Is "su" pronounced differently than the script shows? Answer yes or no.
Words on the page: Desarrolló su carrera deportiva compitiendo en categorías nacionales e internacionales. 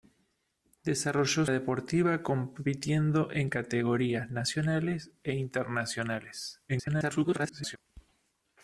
yes